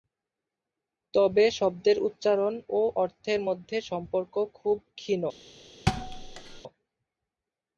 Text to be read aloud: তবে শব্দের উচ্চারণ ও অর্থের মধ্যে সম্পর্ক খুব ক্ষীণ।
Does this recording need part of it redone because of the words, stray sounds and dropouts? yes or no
yes